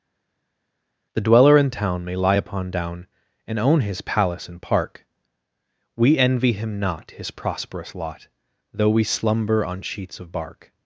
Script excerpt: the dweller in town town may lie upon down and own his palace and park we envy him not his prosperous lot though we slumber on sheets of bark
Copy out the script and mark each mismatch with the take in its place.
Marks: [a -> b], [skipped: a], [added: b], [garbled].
the dweller in town [skipped: town] may lie upon down and own his palace and park we envy him not his prosperous lot though we slumber on sheets of bark